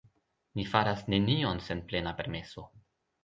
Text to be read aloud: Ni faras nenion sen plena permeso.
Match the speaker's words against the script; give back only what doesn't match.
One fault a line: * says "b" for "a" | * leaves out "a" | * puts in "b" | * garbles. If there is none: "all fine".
all fine